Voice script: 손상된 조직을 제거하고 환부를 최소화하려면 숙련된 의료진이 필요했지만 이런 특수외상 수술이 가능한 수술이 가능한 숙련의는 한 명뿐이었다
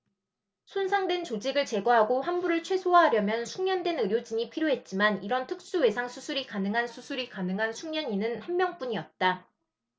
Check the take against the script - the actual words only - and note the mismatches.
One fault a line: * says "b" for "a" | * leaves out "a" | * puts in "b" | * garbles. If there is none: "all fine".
all fine